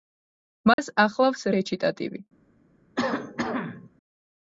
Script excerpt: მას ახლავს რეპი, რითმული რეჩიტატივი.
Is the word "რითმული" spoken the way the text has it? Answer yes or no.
no